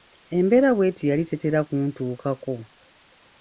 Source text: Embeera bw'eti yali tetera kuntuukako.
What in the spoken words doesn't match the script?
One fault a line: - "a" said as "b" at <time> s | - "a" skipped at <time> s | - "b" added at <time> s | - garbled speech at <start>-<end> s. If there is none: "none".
none